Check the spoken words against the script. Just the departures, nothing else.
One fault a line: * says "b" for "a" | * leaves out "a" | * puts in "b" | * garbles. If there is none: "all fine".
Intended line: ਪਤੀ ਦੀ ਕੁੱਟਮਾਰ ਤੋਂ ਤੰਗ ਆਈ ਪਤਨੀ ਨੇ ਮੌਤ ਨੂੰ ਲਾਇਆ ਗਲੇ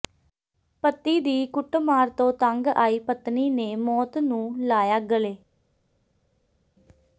all fine